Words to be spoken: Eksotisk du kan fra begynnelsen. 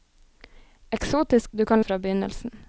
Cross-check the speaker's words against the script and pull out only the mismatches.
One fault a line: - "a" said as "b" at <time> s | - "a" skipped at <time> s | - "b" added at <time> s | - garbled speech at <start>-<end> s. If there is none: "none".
none